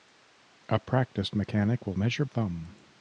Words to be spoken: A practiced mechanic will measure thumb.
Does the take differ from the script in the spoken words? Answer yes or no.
no